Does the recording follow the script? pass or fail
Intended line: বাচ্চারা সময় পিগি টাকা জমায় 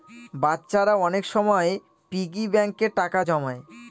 fail